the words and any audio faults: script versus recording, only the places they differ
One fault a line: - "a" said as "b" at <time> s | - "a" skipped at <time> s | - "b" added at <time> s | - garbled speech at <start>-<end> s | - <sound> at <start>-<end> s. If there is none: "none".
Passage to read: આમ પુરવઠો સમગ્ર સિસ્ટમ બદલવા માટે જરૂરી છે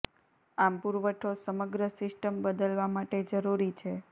none